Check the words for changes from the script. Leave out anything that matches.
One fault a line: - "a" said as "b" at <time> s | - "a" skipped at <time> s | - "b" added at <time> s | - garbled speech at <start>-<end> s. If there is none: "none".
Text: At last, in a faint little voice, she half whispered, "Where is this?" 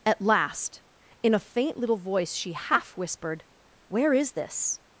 none